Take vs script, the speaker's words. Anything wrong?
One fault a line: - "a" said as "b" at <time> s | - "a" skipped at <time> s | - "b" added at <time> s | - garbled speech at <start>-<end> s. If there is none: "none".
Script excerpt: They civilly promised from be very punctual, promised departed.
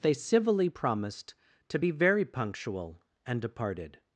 - "from" said as "to" at 1.7 s
- "promised" said as "and" at 3.2 s